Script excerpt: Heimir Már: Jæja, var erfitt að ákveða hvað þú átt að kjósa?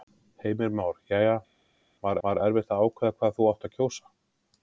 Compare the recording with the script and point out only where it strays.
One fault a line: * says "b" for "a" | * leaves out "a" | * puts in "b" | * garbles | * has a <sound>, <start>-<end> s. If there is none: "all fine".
* puts in "var"